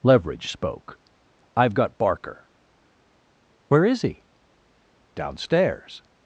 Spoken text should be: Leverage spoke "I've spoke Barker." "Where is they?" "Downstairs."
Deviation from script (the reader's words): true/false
true